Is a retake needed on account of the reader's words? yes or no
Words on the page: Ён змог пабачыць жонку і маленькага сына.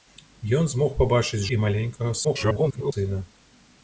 yes